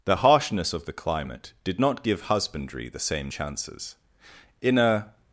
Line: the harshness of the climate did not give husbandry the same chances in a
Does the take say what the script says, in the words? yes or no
yes